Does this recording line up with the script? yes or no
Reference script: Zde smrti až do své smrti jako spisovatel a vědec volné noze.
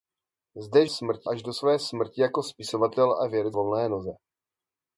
yes